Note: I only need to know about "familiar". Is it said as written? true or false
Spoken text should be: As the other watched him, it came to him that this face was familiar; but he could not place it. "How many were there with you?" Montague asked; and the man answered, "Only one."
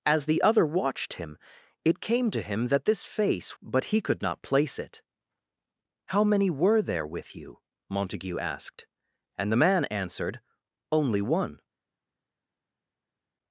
false